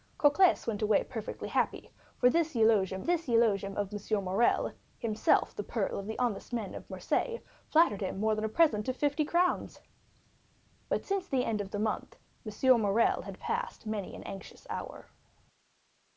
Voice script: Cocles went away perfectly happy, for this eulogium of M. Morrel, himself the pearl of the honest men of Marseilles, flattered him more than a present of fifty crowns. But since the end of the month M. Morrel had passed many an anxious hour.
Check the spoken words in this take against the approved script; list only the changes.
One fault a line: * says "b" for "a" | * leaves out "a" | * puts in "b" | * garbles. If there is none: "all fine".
* puts in "this eulogium"